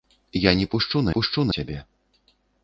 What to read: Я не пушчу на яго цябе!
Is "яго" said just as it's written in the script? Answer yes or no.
no